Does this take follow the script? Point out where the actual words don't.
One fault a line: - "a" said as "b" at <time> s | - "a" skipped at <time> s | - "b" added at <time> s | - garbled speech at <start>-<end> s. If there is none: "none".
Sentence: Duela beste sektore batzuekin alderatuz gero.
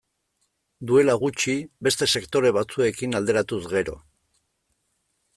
- "gutxi" added at 1.2 s